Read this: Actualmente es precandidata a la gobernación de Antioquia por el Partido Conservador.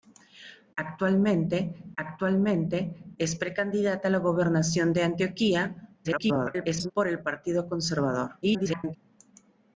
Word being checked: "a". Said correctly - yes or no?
yes